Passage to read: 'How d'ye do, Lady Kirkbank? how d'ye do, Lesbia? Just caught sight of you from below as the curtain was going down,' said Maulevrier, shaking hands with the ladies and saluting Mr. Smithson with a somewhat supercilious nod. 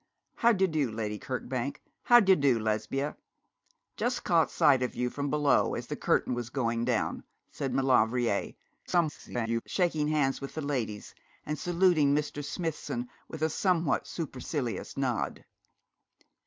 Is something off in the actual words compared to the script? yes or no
yes